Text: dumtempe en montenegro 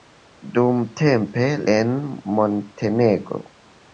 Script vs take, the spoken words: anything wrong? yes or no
no